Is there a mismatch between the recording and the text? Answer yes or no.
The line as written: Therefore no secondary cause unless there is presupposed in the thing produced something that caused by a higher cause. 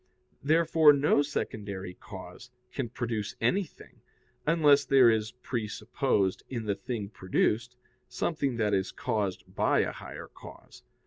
yes